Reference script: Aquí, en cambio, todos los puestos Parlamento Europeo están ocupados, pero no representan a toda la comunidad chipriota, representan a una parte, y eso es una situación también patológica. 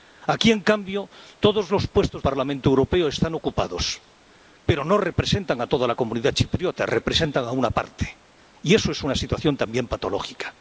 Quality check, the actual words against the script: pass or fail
pass